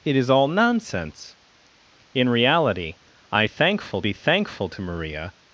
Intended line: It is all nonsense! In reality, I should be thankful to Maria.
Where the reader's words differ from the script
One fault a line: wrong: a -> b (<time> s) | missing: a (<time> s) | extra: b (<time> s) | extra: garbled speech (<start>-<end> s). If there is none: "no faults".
wrong: should -> thankful (3.5 s)